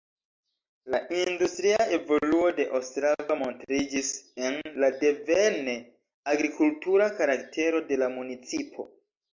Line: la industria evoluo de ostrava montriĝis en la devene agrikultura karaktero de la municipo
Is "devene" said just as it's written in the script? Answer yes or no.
yes